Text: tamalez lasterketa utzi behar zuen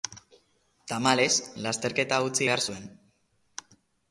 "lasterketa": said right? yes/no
yes